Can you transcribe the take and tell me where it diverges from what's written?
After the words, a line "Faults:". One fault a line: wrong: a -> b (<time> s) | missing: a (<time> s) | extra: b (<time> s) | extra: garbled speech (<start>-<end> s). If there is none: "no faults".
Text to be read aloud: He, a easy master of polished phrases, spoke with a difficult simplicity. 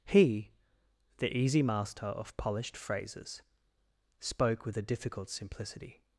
He, the easy master of polished phrases, spoke with a difficult simplicity.
Faults:
wrong: a -> the (1.2 s)